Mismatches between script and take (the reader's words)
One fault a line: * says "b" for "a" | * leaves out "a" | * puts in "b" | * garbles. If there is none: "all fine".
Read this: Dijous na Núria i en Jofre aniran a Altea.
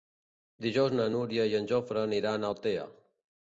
all fine